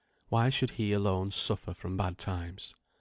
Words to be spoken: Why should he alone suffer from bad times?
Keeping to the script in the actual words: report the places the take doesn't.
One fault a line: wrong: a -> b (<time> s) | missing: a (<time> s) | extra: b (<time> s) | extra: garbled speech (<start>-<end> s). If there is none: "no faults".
no faults